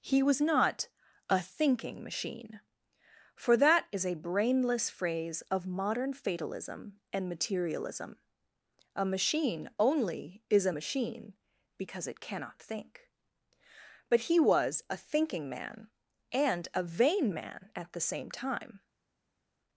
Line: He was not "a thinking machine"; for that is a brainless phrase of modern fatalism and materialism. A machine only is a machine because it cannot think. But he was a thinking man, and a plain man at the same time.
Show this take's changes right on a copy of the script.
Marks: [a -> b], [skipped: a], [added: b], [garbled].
He was not "a thinking machine"; for that is a brainless phrase of modern fatalism and materialism. A machine only is a machine because it cannot think. But he was a thinking man, and a [plain -> vain] man at the same time.